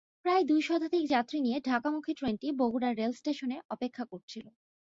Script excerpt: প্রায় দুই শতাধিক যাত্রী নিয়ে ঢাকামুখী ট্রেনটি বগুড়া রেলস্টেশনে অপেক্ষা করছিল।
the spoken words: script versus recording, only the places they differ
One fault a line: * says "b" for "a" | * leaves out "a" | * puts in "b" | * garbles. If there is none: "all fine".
all fine